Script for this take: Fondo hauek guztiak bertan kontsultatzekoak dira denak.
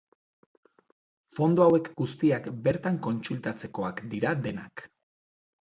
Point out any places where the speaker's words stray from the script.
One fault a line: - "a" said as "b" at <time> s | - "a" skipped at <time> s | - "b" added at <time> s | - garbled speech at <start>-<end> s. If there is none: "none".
none